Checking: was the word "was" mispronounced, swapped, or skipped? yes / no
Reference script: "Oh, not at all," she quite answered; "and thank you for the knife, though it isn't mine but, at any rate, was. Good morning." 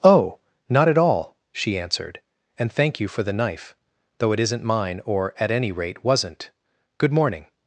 yes